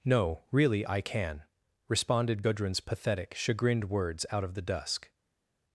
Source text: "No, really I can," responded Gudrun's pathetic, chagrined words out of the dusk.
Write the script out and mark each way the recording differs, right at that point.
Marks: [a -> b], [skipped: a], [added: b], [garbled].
"No, really I can," responded Gudrun's pathetic, chagrined words out of the dusk.